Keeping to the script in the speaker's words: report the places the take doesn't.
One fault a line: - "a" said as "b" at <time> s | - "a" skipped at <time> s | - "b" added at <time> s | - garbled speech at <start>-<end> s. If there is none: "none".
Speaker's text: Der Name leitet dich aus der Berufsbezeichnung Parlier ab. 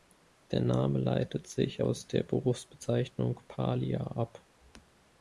- "dich" said as "sich" at 1.4 s